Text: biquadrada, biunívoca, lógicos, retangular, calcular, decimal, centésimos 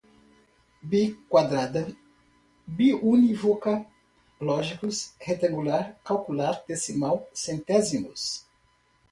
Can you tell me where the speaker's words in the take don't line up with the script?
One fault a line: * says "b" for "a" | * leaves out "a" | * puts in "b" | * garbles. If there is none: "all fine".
all fine